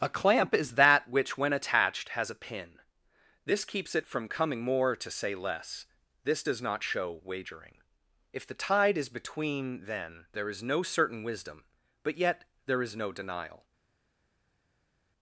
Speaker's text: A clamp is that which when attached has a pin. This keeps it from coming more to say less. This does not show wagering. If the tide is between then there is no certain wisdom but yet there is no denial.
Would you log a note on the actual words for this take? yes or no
no